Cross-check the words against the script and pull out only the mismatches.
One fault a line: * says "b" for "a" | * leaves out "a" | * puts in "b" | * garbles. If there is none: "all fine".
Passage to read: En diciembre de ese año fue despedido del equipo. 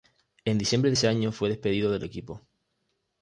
all fine